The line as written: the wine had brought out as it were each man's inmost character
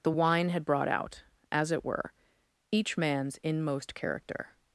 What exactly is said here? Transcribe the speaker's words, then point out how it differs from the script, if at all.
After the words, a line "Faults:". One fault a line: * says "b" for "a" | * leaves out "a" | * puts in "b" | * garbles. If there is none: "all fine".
the wine had brought out as it were each man's inmost character
Faults:
all fine